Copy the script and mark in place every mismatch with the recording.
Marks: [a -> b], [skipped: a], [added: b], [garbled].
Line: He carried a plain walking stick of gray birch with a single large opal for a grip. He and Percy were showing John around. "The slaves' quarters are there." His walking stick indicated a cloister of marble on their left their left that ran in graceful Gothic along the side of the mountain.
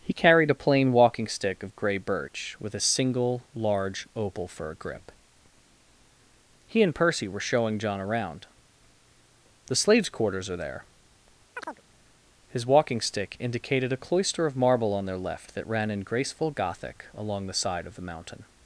He carried a plain walking stick of gray birch with a single large opal for a grip. He and Percy were showing John around. "The slaves' quarters are there." His walking stick indicated a cloister of marble on their left [skipped: their left] that ran in graceful Gothic along the side of the mountain.